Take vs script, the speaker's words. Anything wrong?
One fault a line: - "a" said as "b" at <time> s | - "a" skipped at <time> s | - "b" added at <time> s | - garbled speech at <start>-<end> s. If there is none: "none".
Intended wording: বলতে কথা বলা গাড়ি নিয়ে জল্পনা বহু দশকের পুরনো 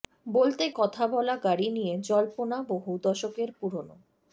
none